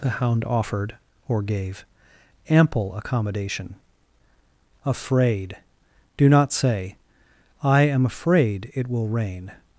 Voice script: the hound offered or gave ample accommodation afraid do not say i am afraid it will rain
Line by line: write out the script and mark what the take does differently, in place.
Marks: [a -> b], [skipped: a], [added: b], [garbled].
the hound offered or gave ample accommodation afraid do not say i am afraid it will rain